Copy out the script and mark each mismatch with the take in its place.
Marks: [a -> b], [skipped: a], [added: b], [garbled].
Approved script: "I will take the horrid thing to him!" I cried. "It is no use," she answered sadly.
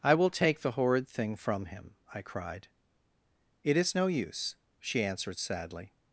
"I will take the horrid thing [to -> from] him!" I cried. "It is no use," she answered sadly.